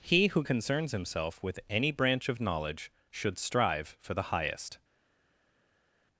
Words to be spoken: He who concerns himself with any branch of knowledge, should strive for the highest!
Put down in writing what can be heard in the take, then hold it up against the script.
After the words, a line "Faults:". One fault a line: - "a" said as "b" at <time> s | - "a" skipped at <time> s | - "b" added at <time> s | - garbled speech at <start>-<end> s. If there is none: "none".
He who concerns himself with any branch of knowledge, should strive for the highest!
Faults:
none